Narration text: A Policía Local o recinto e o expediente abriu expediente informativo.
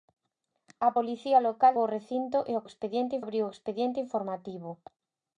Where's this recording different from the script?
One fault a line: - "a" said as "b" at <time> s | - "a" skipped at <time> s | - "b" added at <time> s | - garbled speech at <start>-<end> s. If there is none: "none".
none